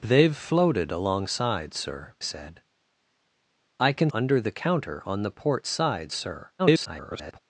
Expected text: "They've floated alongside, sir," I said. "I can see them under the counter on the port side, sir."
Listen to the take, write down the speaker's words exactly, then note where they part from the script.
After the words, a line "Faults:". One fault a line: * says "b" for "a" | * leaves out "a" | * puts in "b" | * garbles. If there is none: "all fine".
"They've floated alongside, sir," said. "I can under the counter on the port side, sir." [garbled]
Faults:
* leaves out "I"
* leaves out "see them"
* garbles